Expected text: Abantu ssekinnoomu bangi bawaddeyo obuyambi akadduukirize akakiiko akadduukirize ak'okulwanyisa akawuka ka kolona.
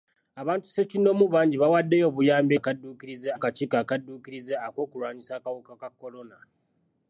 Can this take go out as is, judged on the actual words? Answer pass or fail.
pass